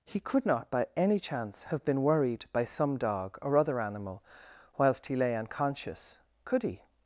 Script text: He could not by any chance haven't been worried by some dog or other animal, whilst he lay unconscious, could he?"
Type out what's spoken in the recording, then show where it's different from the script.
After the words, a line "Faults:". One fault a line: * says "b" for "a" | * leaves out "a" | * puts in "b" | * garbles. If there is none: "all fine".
He could not by any chance have been worried by some dog or other animal, whilst he lay unconscious, could he?"
Faults:
* says "have" for "haven't"